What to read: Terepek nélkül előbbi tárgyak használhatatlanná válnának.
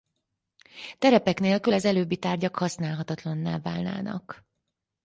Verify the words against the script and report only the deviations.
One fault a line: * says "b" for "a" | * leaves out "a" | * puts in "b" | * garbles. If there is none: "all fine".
* puts in "az"